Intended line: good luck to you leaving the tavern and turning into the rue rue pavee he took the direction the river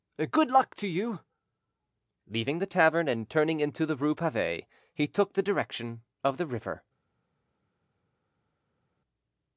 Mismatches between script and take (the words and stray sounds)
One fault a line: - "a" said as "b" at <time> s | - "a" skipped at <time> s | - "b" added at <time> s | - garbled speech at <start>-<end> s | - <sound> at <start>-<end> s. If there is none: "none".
- "rue" skipped at 4.2 s
- "of" added at 6.2 s